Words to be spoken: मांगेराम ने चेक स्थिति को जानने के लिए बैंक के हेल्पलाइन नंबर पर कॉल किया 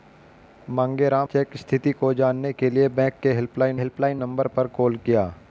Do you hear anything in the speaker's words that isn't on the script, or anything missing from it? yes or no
yes